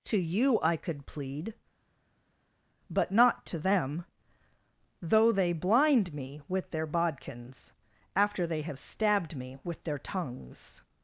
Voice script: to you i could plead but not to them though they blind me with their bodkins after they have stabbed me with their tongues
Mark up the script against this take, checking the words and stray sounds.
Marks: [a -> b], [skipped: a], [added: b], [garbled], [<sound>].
to you i could plead but not to them though they blind me with their bodkins after they have stabbed me with their tongues